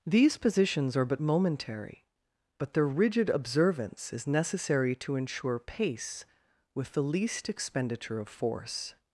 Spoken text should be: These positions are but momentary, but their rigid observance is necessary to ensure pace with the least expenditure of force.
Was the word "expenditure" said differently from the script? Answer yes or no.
no